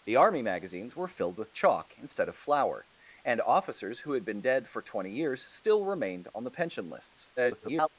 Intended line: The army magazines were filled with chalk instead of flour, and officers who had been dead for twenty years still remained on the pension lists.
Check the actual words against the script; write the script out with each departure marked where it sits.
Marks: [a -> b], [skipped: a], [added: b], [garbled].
The army magazines were filled with chalk instead of flour, and officers who had been dead for twenty years still remained on the pension lists. [garbled]